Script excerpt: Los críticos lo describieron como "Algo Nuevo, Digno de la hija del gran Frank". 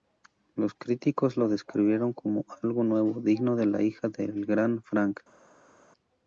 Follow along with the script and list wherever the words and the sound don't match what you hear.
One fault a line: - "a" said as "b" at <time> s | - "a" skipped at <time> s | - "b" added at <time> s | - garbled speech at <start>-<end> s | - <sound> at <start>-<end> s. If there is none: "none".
none